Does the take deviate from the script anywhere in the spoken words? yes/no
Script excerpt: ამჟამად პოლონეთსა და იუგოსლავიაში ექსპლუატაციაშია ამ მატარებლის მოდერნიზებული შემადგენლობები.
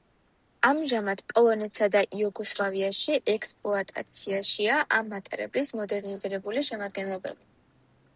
no